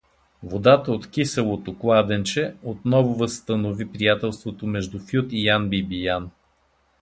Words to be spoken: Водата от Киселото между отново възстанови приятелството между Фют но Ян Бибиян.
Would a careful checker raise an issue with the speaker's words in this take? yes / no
yes